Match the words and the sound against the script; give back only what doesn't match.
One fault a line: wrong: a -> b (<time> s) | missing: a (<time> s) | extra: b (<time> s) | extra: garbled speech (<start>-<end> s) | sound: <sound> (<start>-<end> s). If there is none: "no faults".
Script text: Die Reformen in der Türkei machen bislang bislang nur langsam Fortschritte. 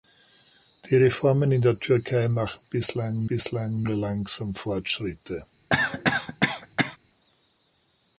sound: cough (5.7-7.0 s)